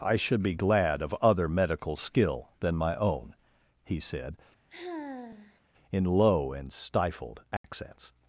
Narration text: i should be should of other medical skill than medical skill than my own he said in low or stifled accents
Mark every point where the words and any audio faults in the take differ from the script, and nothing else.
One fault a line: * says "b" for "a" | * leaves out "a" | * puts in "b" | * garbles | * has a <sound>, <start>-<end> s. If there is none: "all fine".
* says "glad" for "should"
* leaves out "medical skill than"
* has a sigh, 4.7-5.6 s
* says "and" for "or"
* has a dropout, 7.6-7.6 s